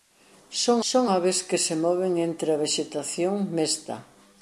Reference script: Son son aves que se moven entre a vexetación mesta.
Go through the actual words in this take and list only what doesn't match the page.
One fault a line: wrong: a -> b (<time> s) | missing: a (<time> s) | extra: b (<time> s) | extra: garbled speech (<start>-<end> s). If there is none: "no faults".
no faults